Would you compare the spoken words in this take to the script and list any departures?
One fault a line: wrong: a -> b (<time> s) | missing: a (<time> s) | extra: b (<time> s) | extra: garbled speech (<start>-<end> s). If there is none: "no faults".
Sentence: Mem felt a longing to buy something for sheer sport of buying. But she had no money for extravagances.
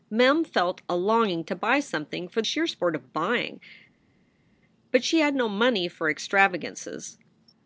no faults